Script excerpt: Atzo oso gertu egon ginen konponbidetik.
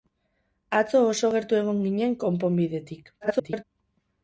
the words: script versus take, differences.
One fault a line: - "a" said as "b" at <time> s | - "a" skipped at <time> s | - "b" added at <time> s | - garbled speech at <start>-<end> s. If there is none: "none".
- garbled speech at 3.2-3.6 s